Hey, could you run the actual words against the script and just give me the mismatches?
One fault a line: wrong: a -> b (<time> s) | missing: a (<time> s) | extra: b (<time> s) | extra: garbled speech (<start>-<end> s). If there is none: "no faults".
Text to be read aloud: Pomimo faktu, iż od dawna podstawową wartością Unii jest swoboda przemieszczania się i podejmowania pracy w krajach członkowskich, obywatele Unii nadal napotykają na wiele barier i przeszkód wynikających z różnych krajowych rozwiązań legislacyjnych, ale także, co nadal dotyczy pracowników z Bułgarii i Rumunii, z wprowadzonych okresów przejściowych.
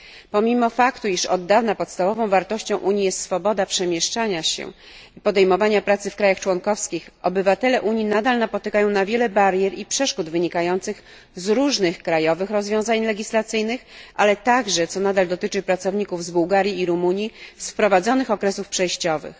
no faults